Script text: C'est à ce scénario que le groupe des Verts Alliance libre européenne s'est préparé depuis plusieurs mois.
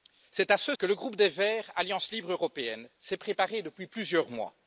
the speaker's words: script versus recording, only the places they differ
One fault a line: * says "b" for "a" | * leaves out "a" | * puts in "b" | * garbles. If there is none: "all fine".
* leaves out "scénario"